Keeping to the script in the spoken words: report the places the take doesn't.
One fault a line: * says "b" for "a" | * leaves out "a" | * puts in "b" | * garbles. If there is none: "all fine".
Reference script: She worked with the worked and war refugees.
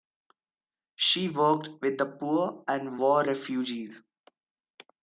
* says "poor" for "worked"